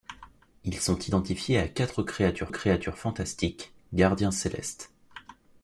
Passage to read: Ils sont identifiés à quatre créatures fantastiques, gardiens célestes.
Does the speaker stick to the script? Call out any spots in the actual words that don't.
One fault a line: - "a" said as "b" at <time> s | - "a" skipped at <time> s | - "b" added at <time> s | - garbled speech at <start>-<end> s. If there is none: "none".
- "créatures" added at 2.5 s